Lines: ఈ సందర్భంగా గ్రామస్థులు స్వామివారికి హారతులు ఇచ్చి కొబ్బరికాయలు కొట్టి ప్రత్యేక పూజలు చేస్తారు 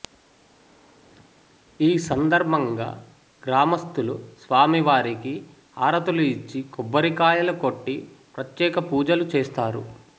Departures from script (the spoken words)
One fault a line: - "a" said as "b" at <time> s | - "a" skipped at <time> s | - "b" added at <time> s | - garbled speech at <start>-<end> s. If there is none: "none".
none